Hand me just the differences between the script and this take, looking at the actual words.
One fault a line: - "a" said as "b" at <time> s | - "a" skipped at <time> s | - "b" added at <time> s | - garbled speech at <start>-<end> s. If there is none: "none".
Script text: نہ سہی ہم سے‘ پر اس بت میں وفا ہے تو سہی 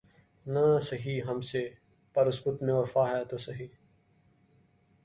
none